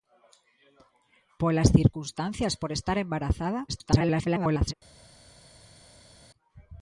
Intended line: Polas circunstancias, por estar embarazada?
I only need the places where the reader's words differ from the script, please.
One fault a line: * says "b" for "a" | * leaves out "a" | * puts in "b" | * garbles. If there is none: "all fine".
* garbles